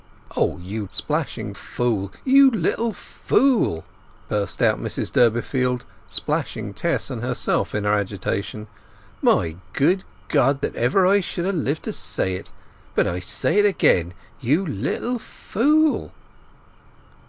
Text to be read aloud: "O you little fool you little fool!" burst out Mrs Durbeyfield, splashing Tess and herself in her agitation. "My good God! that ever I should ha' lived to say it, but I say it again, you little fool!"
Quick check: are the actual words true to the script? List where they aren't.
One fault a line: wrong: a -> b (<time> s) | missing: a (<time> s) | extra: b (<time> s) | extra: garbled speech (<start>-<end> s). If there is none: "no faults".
wrong: little -> splashing (0.9 s)